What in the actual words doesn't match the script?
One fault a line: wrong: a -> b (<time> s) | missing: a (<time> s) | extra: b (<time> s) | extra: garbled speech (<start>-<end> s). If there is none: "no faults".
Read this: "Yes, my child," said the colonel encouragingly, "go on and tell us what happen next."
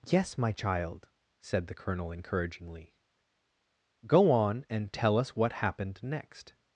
wrong: happen -> happened (5.5 s)